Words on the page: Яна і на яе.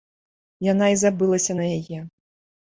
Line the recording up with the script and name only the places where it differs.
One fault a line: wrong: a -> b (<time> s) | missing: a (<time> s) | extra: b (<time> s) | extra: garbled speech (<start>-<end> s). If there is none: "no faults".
extra: забылася (1.0 s)